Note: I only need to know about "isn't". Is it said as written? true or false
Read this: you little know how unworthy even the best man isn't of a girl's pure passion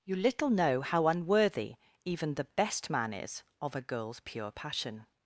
false